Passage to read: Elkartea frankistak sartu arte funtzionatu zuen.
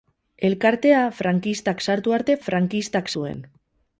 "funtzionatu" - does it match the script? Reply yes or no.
no